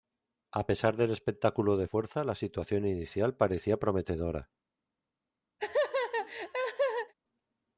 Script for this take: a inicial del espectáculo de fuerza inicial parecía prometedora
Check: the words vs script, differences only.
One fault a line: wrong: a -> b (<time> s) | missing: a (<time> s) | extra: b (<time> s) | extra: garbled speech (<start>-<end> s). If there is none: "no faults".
wrong: inicial -> pesar (0.6 s)
extra: la situación (2.2 s)